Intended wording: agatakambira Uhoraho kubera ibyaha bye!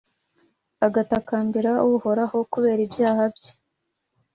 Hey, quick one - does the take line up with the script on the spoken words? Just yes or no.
yes